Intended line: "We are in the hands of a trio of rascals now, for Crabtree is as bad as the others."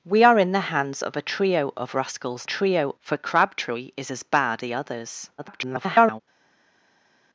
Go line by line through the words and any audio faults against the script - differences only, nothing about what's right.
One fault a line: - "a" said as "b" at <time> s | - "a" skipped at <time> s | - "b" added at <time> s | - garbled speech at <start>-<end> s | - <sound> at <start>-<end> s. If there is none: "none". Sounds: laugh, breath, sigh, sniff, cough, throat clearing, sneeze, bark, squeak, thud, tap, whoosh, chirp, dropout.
- "now" said as "trio" at 2.4 s
- "as" skipped at 4.6 s
- garbled speech at 5.4-6.2 s